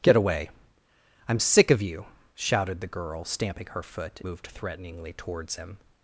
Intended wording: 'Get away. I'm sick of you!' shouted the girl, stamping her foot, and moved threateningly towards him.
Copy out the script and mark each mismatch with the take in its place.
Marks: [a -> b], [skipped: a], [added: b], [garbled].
'Get away. I'm sick of you!' shouted the girl, stamping her foot, [skipped: and] moved threateningly towards him.